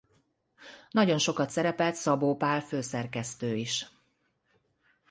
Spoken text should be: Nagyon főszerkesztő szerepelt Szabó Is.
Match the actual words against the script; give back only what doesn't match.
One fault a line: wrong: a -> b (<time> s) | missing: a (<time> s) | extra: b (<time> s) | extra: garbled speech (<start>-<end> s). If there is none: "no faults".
wrong: főszerkesztő -> sokat (1.2 s)
extra: Pál főszerkesztő (2.3 s)